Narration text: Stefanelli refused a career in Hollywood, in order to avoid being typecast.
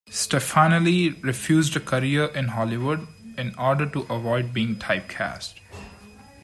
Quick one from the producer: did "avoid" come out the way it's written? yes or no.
yes